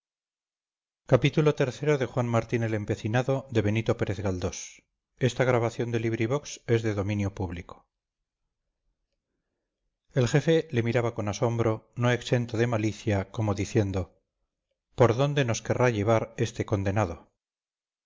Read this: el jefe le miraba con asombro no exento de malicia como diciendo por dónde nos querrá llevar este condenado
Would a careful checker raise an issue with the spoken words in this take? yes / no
no